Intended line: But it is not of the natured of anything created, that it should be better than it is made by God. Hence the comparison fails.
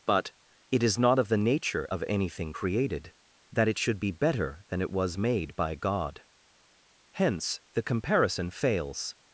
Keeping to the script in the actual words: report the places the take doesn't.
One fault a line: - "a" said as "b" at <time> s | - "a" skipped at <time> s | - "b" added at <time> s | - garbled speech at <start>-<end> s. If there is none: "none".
- "natured" said as "nature" at 1.4 s
- "is" said as "was" at 4.9 s